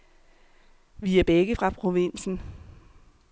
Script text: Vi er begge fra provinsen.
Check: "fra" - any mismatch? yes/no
no